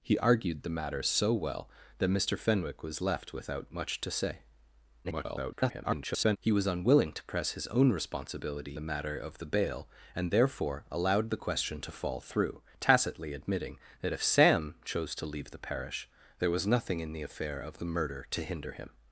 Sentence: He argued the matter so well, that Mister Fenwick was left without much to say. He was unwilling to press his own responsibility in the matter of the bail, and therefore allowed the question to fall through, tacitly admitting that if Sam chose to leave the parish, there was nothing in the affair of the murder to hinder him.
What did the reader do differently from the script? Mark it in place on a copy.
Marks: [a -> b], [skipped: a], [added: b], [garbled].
He argued the matter so well, that Mister Fenwick was left without much to say. [garbled] He was unwilling to press his own responsibility [skipped: in] the matter of the bail, and therefore allowed the question to fall through, tacitly admitting that if Sam chose to leave the parish, there was nothing in the affair of the murder to hinder him.